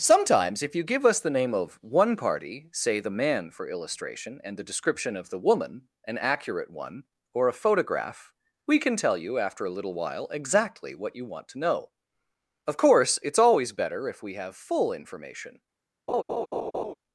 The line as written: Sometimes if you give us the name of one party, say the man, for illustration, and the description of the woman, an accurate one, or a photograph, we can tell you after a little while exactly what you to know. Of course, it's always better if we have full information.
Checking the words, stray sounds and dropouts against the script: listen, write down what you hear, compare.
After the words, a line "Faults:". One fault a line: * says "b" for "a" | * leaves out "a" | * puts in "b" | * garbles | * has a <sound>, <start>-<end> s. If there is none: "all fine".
Sometimes if you give us the name of one party, say the man, for illustration, and the description of the woman, an accurate one, or a photograph, we can tell you after a little while exactly what you want to know. Of course, it's always better if we have full information.
Faults:
* puts in "want"
* has a laugh, 16.1-16.9 s